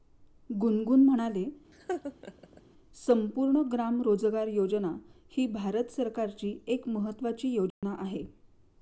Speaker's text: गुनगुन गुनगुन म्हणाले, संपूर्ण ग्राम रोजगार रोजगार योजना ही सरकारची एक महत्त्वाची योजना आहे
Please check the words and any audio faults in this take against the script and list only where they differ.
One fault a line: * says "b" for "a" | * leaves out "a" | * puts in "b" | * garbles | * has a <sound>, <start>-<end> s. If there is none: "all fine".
* leaves out "गुनगुन"
* has a laugh, 1.7-2.6 s
* leaves out "रोजगार"
* puts in "भारत"
* has a dropout, 7.7-7.8 s